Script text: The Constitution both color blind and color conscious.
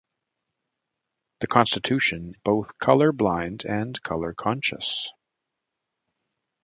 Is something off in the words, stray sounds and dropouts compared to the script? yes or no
no